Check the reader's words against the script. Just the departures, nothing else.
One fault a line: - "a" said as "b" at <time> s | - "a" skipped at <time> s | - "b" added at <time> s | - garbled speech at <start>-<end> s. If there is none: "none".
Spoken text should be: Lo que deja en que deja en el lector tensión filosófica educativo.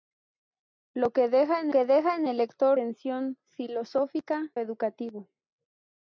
none